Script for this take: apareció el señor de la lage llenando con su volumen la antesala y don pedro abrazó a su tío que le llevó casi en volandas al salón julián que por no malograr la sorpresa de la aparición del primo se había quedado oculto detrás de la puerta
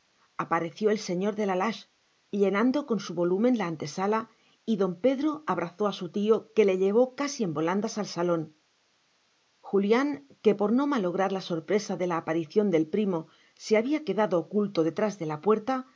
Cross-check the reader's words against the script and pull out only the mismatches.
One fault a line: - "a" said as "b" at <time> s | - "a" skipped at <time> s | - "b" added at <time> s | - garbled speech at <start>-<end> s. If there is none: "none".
none